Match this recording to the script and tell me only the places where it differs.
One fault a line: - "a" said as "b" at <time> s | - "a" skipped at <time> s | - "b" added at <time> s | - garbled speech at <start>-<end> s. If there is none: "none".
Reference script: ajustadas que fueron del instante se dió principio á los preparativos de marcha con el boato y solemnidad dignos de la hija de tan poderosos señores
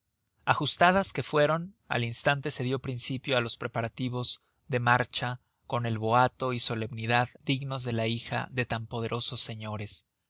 - "del" said as "al" at 1.9 s